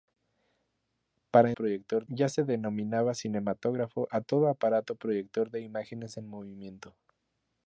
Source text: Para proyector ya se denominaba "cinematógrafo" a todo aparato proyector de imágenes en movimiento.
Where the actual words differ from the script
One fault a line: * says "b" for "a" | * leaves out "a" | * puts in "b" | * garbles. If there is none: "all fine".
all fine